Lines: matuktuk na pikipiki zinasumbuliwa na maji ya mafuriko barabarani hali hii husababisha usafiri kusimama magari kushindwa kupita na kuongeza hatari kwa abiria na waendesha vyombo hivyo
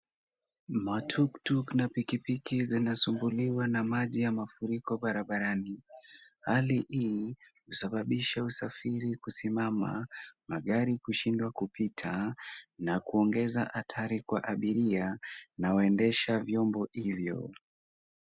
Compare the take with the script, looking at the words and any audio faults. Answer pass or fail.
pass